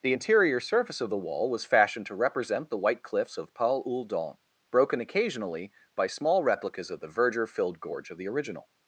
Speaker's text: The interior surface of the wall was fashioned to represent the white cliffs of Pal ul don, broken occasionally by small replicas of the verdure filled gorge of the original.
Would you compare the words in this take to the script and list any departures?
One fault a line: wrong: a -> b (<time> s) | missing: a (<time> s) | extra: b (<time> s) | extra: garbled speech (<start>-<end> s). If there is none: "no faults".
no faults